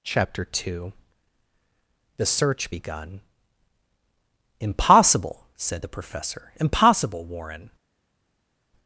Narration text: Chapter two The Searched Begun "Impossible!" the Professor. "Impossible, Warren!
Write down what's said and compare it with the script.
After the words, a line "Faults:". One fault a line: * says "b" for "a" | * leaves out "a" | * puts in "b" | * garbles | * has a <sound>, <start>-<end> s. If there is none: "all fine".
Chapter two The Search Begun "Impossible!" said the Professor. "Impossible, Warren!
Faults:
* says "Search" for "Searched"
* puts in "said"